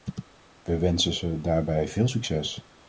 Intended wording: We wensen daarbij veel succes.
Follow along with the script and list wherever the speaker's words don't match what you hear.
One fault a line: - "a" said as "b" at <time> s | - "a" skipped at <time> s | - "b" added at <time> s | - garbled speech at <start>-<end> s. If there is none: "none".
- "ze" added at 1.1 s